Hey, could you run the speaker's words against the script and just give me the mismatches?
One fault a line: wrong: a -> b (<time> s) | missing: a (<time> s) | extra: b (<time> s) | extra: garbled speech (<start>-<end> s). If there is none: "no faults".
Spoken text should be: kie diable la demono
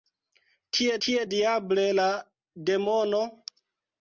extra: kie (1.0 s)